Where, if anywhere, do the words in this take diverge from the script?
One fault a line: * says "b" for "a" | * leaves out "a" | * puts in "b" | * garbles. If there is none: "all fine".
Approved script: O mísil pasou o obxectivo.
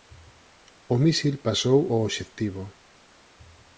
all fine